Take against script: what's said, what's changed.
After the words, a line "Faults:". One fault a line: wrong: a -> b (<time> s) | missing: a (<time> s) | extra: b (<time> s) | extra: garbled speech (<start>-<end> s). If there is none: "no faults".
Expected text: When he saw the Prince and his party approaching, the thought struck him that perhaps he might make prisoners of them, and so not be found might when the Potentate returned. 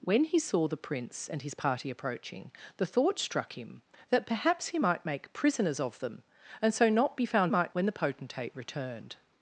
When he saw the Prince and his party approaching, the thought struck him that perhaps he might make prisoners of them, and so not be found might when the Potentate returned.
Faults:
no faults